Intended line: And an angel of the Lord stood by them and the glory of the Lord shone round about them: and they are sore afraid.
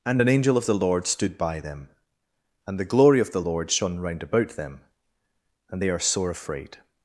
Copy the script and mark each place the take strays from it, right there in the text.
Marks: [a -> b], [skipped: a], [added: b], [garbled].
And an angel of the Lord stood by them and the glory of the Lord shone round about them: and they are sore afraid.